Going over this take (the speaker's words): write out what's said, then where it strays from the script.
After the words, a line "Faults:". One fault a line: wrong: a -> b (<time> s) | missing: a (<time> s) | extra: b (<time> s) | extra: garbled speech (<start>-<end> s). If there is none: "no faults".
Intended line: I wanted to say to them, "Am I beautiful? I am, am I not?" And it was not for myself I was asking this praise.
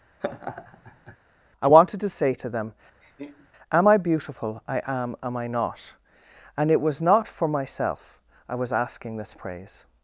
I wanted to say to them, "Am I beautiful? I am, am I not?" And it was not for myself I was asking this praise.
Faults:
no faults